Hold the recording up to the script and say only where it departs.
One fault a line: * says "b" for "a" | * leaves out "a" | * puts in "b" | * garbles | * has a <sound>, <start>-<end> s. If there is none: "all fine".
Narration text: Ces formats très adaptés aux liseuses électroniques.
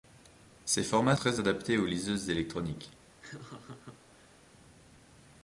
* has a laugh, 3.2-4.4 s